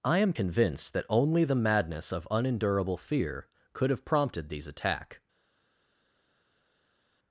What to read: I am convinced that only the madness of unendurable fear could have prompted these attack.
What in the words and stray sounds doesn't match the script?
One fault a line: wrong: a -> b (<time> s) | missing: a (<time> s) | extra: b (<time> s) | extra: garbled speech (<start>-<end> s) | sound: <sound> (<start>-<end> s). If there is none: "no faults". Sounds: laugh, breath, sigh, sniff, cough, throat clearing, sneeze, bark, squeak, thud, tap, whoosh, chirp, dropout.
no faults